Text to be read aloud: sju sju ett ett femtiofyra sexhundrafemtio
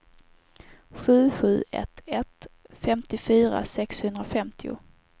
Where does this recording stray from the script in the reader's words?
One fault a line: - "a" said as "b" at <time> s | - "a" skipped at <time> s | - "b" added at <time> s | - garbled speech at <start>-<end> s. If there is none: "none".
none